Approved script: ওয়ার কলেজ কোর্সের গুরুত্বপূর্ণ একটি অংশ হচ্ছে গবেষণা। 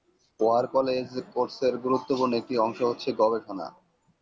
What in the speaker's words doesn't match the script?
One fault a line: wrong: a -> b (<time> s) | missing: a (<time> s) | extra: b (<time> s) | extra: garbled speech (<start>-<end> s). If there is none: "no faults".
no faults